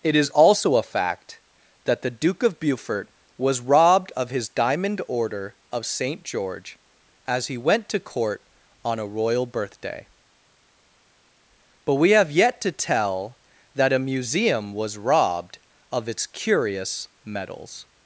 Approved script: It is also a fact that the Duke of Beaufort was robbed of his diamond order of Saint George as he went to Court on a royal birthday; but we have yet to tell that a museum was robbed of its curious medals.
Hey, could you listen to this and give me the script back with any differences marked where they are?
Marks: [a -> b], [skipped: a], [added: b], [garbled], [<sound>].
It is also a fact that the Duke of Beaufort was robbed of his diamond order of Saint George as he went to Court on a royal birthday; but we have yet to tell that a museum was robbed of its curious medals.